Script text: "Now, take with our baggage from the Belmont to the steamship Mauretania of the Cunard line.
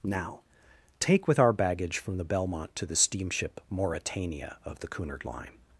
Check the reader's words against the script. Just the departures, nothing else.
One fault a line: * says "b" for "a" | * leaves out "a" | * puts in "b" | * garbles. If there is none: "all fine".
all fine